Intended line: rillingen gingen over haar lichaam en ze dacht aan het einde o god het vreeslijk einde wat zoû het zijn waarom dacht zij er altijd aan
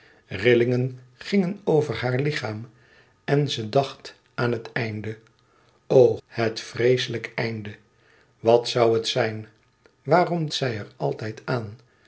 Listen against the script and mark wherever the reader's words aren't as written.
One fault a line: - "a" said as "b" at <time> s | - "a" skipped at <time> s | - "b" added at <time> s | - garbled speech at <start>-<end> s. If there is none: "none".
- "god" skipped at 6.2 s
- "dacht" skipped at 10.5 s